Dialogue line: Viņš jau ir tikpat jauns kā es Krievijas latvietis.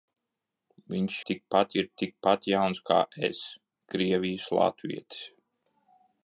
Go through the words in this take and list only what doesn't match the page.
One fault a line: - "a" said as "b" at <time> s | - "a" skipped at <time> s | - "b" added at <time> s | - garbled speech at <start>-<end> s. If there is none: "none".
- "jau" said as "tikpat" at 1.3 s